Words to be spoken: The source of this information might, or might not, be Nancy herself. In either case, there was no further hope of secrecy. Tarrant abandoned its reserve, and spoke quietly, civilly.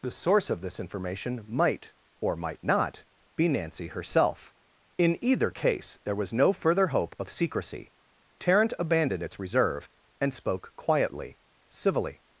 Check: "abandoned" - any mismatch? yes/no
no